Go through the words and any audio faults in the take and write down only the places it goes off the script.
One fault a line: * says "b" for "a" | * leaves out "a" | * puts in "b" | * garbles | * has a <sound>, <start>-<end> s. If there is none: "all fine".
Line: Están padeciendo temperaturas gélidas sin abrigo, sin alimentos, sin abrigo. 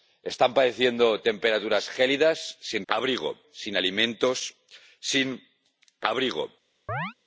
* has a chirp, 6.9-7.1 s